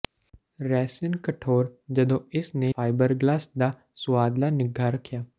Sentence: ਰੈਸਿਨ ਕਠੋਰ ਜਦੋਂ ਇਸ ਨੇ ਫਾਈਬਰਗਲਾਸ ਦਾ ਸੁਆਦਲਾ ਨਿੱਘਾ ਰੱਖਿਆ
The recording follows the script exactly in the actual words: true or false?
true